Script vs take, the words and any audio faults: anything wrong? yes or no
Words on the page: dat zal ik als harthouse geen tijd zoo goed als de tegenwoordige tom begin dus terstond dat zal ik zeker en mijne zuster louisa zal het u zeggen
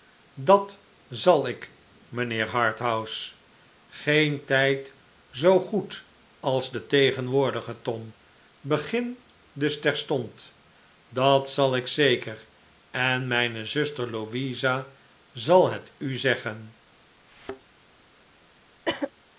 yes